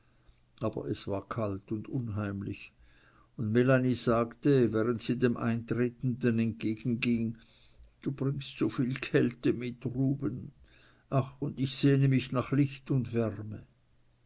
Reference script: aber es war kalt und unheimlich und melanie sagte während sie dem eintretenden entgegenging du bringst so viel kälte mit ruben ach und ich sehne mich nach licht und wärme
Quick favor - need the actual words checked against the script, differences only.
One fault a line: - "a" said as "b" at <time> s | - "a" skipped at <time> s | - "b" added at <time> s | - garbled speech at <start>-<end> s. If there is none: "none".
none